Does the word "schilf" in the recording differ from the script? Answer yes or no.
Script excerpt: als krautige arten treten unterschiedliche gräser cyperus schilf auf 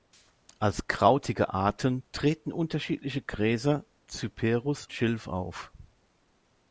no